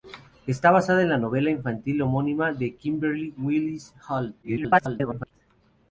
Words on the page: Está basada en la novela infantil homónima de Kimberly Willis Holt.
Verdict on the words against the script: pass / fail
fail